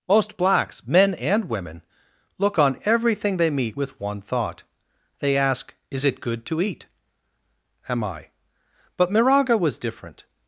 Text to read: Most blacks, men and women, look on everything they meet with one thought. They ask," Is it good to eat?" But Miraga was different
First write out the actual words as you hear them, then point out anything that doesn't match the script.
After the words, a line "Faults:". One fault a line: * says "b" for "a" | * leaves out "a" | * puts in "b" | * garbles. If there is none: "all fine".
Most blacks, men and women, look on everything they meet with one thought. They ask," Is it good to eat?" am I But Miraga was different
Faults:
* puts in "am I"